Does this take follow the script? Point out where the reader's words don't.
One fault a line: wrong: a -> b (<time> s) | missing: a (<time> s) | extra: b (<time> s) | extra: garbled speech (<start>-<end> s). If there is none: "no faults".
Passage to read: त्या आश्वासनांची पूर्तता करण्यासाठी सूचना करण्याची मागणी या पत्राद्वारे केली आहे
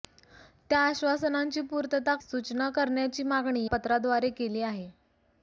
missing: करण्यासाठी (2.1 s)
missing: या (3.6 s)